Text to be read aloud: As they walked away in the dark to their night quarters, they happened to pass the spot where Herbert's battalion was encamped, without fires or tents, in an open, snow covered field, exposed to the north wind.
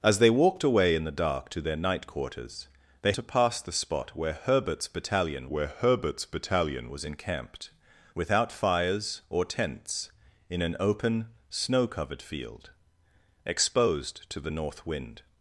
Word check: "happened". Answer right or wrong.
wrong